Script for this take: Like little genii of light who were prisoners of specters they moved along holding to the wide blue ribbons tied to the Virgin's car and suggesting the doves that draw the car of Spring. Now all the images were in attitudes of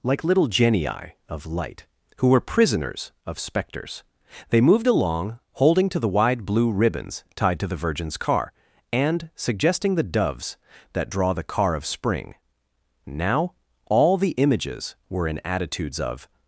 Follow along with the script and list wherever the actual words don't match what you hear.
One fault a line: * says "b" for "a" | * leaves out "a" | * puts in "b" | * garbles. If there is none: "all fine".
all fine